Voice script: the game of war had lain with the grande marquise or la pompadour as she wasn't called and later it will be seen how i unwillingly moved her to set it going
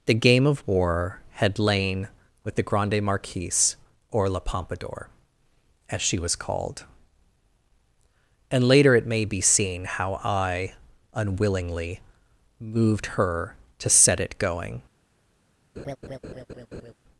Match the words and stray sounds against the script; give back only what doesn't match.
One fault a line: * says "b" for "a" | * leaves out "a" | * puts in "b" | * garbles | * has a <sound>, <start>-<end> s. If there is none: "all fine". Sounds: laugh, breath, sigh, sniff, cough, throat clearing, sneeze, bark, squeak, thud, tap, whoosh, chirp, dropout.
* says "was" for "wasn't"
* says "may" for "will"
* has a laugh, 15.8-16.9 s